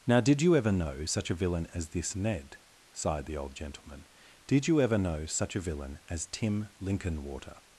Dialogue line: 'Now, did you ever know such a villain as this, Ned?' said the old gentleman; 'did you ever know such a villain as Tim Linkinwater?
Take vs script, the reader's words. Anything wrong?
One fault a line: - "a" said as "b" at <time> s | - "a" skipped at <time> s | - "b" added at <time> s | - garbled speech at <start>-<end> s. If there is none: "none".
- "said" said as "sighed" at 2.9 s